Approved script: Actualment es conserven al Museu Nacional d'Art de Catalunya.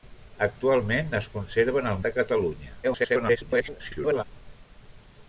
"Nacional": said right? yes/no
no